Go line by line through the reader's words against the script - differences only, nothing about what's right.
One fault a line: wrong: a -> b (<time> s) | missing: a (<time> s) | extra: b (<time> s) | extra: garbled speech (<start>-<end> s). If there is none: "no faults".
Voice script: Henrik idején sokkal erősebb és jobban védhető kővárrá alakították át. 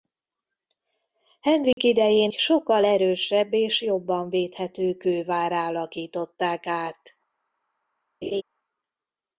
no faults